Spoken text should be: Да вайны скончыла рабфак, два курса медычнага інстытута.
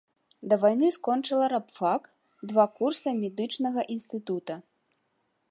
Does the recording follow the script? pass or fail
pass